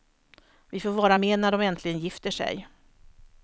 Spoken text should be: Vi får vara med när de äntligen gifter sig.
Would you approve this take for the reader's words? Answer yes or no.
yes